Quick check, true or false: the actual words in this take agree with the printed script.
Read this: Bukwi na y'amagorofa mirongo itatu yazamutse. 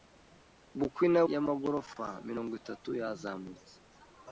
true